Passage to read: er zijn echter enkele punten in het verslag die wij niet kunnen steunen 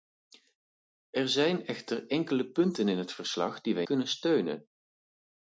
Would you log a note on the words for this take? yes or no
yes